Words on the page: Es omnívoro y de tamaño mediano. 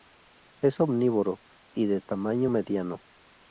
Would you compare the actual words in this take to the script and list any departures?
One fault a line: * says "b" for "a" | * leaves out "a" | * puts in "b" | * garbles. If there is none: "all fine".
all fine